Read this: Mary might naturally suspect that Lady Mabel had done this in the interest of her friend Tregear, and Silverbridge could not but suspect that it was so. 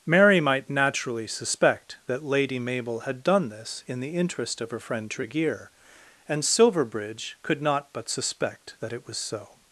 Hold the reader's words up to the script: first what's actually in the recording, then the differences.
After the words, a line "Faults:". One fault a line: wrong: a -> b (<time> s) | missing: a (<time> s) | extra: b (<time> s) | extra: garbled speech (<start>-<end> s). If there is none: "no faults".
Mary might naturally suspect that Lady Mabel had done this in the interest of her friend Tregear, and Silverbridge could not but suspect that it was so.
Faults:
no faults